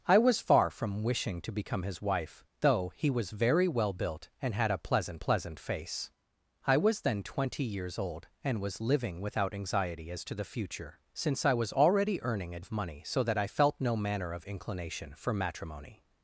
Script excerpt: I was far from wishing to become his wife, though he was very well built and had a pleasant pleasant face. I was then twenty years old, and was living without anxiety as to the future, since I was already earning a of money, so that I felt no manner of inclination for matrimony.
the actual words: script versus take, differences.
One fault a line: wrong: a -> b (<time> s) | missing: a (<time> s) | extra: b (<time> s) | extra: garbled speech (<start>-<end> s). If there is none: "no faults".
no faults